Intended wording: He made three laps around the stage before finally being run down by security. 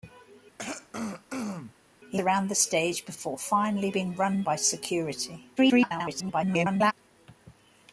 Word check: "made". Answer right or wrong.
wrong